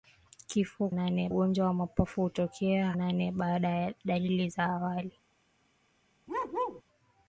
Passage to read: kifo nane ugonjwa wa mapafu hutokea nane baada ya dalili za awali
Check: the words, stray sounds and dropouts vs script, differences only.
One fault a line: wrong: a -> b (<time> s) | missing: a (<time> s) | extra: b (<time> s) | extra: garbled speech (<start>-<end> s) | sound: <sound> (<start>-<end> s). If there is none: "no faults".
sound: bark (6.3-6.8 s)